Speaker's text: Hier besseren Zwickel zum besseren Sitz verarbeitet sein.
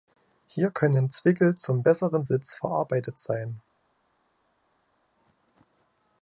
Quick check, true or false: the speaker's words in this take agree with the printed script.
false